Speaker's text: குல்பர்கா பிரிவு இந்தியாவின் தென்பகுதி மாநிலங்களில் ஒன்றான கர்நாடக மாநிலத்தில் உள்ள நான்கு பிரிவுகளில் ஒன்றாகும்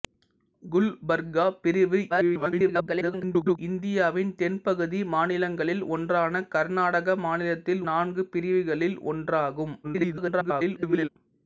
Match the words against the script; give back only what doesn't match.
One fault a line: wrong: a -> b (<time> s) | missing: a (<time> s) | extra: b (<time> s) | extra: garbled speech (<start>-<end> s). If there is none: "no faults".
extra: garbled speech (2.1-3.6 s)
missing: உள்ள (7.8 s)
extra: garbled speech (9.8-11.1 s)